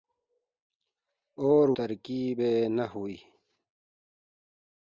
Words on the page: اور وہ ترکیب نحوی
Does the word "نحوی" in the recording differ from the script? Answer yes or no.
no